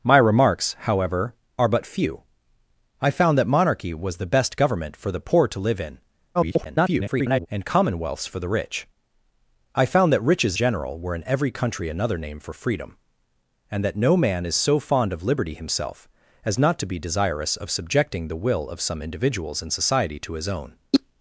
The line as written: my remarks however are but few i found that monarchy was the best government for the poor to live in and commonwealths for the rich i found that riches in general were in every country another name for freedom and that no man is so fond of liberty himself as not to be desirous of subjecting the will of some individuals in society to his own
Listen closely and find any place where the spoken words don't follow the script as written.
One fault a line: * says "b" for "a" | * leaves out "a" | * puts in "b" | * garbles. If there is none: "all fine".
* garbles
* leaves out "in"